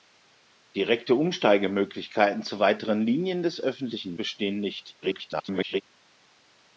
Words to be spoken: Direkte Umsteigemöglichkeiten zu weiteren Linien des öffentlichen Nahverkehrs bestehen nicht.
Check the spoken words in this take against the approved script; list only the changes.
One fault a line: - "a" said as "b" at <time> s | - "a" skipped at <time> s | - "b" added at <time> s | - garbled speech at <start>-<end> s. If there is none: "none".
- "Nahverkehrs" skipped at 4.2 s
- garbled speech at 5.0-5.8 s